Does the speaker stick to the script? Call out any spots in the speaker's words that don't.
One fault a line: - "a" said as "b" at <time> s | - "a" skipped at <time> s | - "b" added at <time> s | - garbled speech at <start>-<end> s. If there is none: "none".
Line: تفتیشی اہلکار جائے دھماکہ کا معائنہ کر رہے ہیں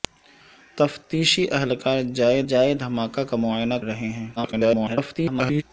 - "جائے" added at 2.5 s
- "کر" skipped at 3.7 s
- garbled speech at 4.4-5.6 s